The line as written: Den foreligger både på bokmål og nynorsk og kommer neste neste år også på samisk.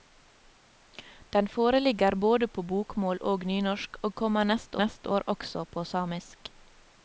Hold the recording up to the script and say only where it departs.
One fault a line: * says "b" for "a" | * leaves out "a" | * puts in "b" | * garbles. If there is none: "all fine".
all fine